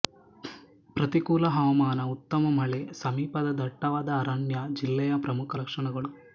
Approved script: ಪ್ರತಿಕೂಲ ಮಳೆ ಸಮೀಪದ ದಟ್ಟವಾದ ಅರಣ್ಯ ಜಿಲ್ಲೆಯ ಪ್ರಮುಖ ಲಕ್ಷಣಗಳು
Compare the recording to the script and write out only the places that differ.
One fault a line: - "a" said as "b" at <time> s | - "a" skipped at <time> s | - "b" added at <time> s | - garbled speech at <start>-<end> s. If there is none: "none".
- "ಹವಾಮಾನ ಉತ್ತಮ" added at 1.5 s